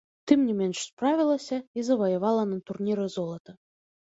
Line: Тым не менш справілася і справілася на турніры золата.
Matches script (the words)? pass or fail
fail